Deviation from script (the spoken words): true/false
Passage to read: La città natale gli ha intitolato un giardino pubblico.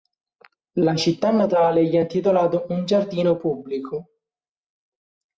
false